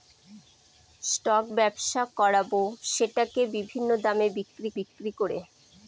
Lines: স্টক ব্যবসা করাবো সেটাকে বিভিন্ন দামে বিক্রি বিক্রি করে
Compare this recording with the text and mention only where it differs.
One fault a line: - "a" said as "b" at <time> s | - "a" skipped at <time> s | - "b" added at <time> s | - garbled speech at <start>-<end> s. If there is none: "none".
none